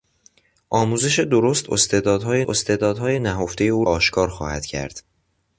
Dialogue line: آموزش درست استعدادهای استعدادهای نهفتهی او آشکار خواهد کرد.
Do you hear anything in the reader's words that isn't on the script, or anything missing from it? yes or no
no